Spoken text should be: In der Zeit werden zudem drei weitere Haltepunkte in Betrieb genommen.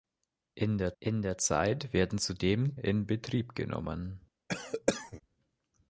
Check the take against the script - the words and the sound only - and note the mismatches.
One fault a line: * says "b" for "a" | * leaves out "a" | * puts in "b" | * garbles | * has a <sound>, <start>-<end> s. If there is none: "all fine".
* puts in "in der"
* leaves out "drei weitere Haltepunkte"
* has a cough, 4.5-5.2 s